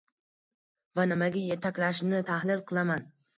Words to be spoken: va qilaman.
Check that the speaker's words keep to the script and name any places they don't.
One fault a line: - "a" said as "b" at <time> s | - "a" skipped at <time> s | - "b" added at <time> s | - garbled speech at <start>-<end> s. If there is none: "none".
- "nimaga yetaklashini tahlil" added at 1.1 s